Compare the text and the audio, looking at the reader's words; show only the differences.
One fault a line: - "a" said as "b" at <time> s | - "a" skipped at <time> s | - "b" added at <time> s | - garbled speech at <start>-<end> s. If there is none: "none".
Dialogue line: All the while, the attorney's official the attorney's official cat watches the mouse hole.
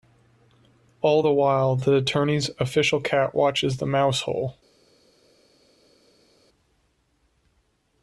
- "the attorney's official" skipped at 3.0 s